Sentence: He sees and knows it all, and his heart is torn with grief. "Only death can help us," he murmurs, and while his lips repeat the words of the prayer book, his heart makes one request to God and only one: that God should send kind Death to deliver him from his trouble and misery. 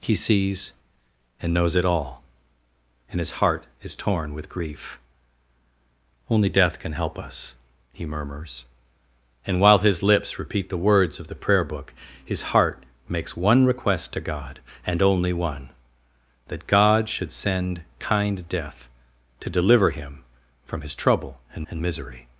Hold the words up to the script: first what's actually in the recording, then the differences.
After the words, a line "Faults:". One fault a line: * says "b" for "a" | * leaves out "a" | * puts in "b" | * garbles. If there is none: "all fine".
He sees and knows it all, and his heart is torn with grief. "Only death can help us," he murmurs, and while his lips repeat the words of the prayer book, his heart makes one request to God and only one: that God should send kind Death to deliver him from his trouble and and misery.
Faults:
* puts in "and"